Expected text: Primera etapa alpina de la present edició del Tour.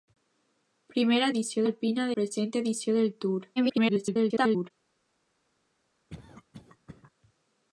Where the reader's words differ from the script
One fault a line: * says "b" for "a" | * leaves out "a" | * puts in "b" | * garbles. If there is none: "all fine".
* says "edició" for "etapa"
* leaves out "la"
* garbles